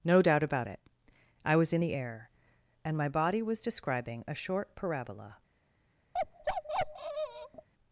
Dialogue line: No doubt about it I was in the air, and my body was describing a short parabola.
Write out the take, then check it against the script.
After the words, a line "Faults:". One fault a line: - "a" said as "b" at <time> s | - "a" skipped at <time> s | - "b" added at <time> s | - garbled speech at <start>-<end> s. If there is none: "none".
No doubt about it I was in the air, and my body was describing a short parabola.
Faults:
none